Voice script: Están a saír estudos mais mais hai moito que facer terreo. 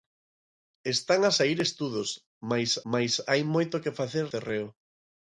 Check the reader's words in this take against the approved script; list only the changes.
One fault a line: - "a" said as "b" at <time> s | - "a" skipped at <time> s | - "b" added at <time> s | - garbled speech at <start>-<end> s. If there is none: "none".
none